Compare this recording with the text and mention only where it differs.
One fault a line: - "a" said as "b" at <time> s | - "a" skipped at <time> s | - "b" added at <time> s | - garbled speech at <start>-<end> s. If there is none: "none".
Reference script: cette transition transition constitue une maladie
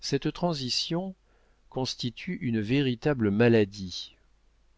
- "transition" skipped at 1.1 s
- "véritable" added at 2.6 s